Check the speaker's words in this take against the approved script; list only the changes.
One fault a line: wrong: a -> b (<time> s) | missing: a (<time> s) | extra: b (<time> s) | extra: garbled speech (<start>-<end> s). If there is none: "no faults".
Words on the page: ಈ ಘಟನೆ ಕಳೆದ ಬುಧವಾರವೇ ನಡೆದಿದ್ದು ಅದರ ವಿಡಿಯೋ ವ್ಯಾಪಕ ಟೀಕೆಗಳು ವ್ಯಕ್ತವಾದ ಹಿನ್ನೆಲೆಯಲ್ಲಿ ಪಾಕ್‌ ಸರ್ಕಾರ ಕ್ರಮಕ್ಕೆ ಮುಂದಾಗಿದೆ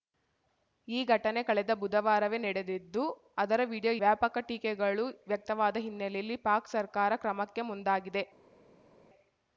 no faults